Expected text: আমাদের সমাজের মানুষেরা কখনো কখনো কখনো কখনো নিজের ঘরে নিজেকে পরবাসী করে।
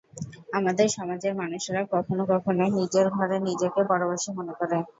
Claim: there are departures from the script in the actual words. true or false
true